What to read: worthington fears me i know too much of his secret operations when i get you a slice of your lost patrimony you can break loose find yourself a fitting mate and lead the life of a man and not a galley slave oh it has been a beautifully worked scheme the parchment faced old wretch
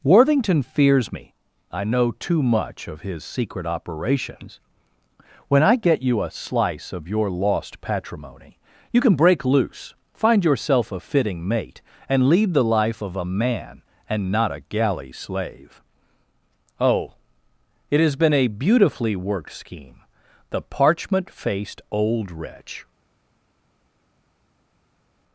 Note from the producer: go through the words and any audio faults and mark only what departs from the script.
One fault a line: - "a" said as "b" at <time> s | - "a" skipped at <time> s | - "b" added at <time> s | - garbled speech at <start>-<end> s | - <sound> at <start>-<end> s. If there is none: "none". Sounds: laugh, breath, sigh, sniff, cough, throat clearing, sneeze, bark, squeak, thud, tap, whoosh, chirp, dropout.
none